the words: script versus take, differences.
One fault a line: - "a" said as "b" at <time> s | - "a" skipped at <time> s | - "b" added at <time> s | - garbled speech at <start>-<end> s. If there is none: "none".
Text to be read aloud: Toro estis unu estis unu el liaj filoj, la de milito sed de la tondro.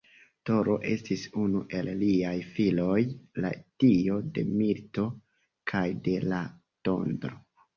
- "estis unu" skipped at 1.6 s
- "dio" added at 3.9 s
- "sed" said as "kaj" at 5.7 s